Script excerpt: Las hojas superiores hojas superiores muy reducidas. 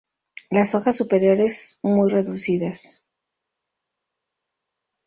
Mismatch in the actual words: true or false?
true